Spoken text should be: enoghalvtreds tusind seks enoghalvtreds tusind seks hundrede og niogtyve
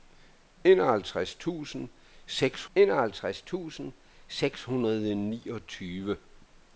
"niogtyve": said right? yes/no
yes